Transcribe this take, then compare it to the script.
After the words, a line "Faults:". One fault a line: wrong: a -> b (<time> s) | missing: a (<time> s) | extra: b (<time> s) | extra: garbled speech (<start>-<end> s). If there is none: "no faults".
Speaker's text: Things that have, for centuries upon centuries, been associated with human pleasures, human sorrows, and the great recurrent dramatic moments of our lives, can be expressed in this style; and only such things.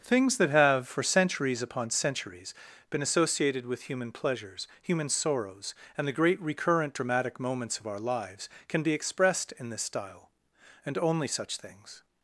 Things that have, for centuries upon centuries, been associated with human pleasures, human sorrows, and the great recurrent dramatic moments of our lives, can be expressed in this style; and only such things.
Faults:
no faults